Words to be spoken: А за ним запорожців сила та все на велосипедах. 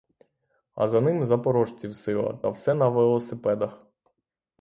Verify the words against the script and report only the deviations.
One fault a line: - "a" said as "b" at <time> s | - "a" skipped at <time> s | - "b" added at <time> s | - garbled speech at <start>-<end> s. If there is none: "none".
none